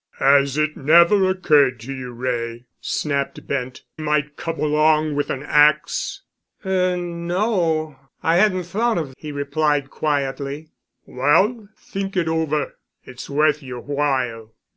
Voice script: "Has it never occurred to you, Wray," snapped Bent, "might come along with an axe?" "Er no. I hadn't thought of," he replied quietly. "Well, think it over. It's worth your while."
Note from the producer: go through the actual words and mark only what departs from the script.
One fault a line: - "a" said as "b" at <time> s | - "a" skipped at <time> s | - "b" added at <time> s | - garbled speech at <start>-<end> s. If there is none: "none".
none